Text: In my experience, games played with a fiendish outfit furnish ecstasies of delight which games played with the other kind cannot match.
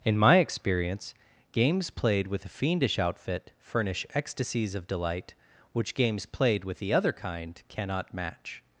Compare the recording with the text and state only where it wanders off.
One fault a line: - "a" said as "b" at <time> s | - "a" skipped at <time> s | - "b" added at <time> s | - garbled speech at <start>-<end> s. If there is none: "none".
none